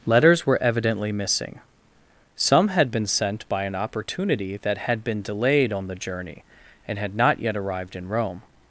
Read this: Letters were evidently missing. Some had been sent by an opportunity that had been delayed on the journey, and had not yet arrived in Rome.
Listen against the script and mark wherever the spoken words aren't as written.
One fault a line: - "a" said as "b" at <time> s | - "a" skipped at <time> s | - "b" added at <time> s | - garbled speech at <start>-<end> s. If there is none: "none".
none